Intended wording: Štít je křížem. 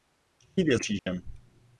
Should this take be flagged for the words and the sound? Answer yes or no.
yes